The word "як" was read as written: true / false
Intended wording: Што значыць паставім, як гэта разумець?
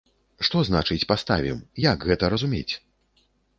true